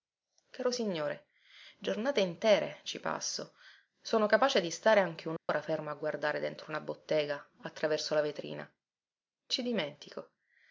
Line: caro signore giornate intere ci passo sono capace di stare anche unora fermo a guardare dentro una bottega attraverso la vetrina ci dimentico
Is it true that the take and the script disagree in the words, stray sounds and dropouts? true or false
true